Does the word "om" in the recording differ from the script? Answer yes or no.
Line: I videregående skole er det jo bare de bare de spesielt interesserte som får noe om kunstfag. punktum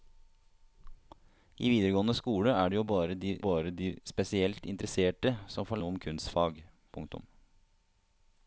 no